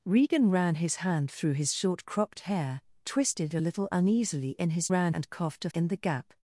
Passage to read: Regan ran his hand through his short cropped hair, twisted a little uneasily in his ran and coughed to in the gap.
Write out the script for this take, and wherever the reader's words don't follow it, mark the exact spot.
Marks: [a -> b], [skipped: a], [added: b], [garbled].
Regan ran his hand through his short cropped hair, twisted a little uneasily in his ran and coughed to in the gap.